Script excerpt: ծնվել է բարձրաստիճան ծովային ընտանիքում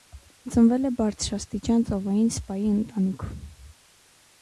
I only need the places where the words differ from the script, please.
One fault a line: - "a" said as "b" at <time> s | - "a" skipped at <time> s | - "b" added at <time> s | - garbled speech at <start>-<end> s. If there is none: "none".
- "սպայի" added at 2.4 s